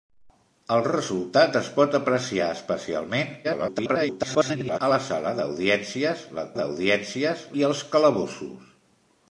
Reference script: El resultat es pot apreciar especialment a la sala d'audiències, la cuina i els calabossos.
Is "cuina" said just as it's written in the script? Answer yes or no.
no